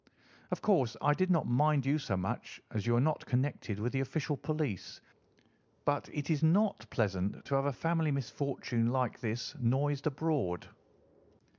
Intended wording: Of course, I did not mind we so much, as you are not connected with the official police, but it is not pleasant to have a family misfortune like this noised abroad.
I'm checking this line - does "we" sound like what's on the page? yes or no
no